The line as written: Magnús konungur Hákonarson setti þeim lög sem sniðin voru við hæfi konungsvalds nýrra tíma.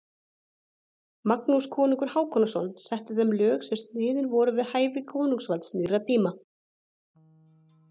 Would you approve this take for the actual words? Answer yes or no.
yes